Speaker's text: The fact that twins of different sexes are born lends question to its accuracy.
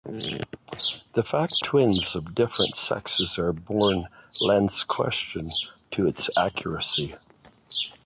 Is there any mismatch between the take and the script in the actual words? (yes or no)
yes